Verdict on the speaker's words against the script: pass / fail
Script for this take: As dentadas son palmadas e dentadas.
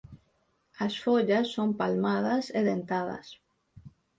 fail